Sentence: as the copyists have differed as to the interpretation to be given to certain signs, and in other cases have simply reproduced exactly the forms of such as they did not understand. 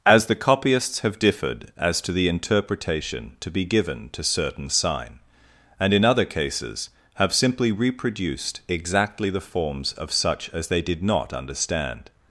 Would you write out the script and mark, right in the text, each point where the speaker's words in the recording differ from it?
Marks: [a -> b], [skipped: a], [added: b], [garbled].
as the copyists have differed as to the interpretation to be given to certain [signs, -> sign] and in other cases have simply reproduced exactly the forms of such as they did not understand.